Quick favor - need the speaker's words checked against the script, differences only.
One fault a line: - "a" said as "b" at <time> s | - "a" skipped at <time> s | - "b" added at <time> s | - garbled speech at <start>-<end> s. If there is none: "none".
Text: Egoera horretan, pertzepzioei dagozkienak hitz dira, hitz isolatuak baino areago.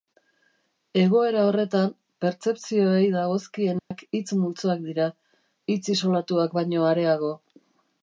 - "multzoak" added at 4.4 s